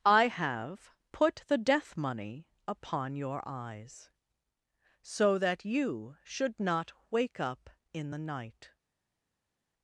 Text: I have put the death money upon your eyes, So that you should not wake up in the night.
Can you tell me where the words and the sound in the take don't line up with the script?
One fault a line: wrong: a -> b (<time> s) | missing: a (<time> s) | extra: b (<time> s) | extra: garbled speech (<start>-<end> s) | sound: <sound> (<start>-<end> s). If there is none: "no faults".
no faults